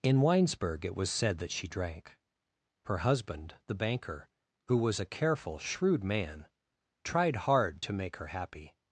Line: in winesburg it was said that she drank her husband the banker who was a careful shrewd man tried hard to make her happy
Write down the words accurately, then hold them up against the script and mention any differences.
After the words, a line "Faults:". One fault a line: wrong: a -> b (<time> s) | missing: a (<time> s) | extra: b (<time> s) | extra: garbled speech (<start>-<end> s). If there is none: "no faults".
in winesburg it was said that she drank her husband the banker who was a careful shrewd man tried hard to make her happy
Faults:
no faults